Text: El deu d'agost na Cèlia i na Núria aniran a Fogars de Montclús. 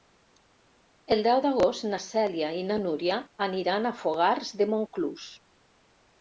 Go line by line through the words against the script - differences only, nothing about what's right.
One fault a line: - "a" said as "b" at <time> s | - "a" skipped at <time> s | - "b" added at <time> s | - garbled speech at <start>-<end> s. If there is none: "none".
none